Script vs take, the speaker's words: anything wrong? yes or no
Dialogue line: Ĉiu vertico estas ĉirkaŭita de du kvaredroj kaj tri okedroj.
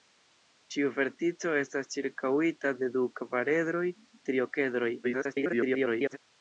yes